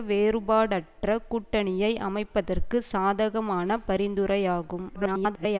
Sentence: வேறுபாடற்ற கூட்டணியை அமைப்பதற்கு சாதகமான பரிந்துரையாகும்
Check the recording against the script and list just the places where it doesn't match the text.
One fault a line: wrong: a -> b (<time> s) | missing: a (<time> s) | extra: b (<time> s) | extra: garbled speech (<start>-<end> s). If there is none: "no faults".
extra: garbled speech (4.9-5.6 s)